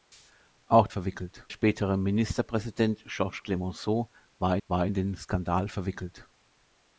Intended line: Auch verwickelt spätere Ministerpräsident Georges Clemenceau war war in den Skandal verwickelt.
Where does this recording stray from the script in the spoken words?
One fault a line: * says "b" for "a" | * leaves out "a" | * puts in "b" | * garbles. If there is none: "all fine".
all fine